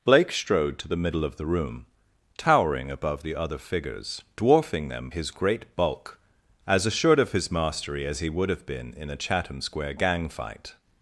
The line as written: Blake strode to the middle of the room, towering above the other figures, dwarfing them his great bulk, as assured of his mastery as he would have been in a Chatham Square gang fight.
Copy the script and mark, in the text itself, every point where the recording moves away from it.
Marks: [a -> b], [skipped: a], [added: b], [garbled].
Blake strode to the middle of the room, towering above the other figures, dwarfing them his great bulk, as assured of his mastery as he would have been in a Chatham Square gang fight.